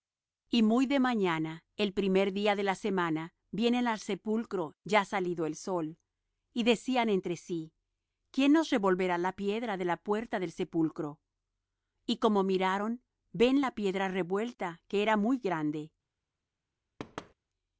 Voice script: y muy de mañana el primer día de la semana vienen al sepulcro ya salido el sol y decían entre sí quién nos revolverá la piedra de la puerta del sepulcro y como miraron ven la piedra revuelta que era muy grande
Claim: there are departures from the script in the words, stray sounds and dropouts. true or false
true